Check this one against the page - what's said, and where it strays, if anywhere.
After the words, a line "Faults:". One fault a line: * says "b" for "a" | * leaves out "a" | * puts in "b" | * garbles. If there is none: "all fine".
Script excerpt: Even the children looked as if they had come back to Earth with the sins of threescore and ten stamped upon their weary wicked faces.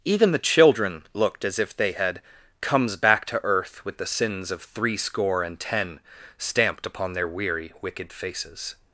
Even the children looked as if they had comes back to Earth with the sins of threescore and ten stamped upon their weary wicked faces.
Faults:
* says "comes" for "come"